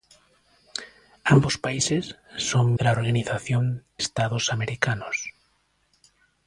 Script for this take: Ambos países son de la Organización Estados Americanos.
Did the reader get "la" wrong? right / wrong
right